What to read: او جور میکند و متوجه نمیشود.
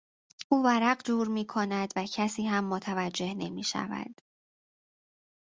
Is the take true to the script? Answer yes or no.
no